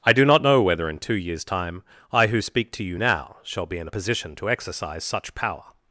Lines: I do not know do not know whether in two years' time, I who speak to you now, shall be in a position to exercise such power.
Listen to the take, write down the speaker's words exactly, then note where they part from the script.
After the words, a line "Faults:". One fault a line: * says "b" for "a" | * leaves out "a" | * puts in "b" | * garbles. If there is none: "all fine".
I do not know whether in two years' time, I who speak to you now, shall be in a position to exercise such power.
Faults:
* leaves out "do not know"